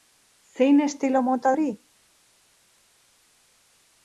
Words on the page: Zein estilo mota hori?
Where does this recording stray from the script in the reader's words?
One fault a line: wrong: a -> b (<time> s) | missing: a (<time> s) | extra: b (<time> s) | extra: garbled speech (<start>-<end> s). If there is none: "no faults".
no faults